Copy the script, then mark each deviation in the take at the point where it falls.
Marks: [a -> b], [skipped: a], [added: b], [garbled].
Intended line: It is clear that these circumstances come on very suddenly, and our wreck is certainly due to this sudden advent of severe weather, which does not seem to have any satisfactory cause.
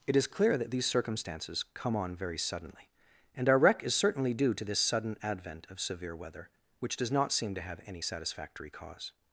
It is clear that these circumstances come on very suddenly, and our wreck is certainly due to this sudden advent of severe weather, which does not seem to have any satisfactory cause.